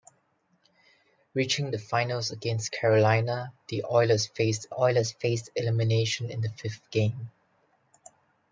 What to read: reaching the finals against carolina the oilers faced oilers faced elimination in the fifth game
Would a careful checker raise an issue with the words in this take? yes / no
no